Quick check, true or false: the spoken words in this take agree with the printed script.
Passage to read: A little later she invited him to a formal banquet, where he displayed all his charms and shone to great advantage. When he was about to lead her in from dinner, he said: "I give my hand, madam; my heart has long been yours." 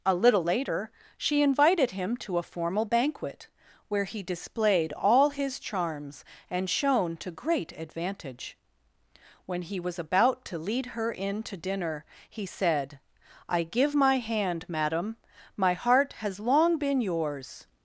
false